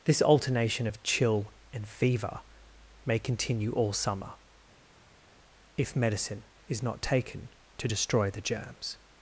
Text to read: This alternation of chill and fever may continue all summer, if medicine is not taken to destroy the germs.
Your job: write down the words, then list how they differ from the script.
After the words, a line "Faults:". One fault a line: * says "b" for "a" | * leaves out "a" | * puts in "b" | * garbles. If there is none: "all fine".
This alternation of chill and fever may continue all summer, if medicine is not taken to destroy the germs.
Faults:
all fine